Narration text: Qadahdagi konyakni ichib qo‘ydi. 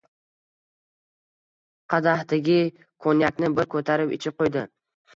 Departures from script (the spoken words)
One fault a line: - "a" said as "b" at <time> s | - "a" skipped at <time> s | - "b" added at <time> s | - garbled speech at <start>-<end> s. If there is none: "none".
- "bir ko‘tarib" added at 3.6 s